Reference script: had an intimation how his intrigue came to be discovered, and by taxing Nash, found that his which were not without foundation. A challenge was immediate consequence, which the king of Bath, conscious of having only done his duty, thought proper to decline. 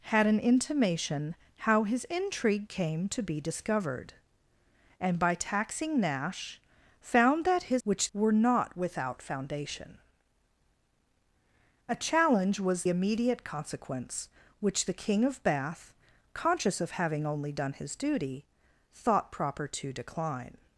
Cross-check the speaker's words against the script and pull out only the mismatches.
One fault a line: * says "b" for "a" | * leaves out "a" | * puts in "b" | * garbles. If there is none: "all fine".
all fine